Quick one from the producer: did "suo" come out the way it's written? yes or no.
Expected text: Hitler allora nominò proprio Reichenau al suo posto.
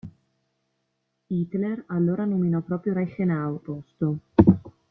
no